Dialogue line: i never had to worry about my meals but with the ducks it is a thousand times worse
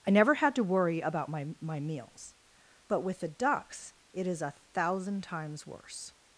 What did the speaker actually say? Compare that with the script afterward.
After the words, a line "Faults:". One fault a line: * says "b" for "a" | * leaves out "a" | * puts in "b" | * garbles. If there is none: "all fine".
i never had to worry about my my meals but with the ducks it is a thousand times worse
Faults:
* puts in "my"